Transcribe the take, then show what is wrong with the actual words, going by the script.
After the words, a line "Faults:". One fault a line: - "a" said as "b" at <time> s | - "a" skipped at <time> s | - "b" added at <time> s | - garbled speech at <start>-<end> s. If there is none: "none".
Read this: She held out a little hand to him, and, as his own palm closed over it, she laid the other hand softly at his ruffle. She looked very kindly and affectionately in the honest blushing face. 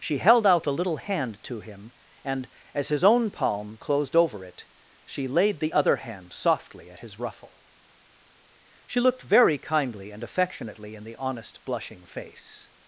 She held out a little hand to him, and, as his own palm closed over it, she laid the other hand softly at his ruffle. She looked very kindly and affectionately in the honest blushing face.
Faults:
none